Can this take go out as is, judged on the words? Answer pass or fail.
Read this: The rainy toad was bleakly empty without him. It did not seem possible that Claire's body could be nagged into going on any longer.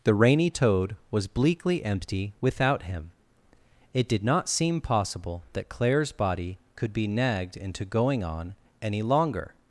pass